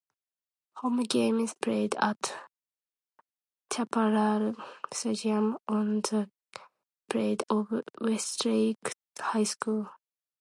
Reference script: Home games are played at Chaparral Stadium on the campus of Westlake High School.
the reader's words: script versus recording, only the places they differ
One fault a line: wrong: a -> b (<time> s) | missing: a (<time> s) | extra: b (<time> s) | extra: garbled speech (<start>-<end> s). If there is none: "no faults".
missing: are (1.5 s)
wrong: campus -> played (7.1 s)